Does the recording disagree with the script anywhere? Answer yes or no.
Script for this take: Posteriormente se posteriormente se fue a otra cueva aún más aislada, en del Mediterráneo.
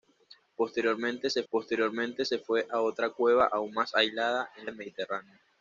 no